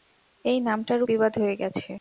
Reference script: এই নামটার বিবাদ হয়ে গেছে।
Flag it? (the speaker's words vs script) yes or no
no